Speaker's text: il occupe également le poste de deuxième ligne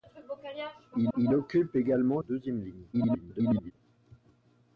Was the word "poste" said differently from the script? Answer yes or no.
yes